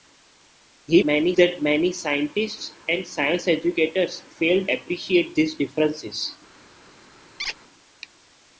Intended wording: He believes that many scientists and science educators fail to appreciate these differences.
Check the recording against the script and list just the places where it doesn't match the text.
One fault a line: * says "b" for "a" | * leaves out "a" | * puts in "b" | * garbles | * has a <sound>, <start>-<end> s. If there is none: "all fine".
* says "many" for "believes"
* leaves out "to"
* has a squeak, 7.4-7.6 s